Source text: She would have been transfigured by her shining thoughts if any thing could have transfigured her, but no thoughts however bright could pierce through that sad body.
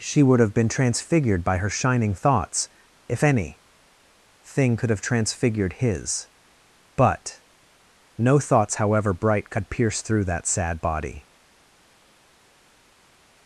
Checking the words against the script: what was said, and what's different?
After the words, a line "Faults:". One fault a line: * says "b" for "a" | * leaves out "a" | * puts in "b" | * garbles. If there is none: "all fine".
She would have been transfigured by her shining thoughts if any thing could have transfigured his, but no thoughts however bright could pierce through that sad body.
Faults:
* says "his" for "her"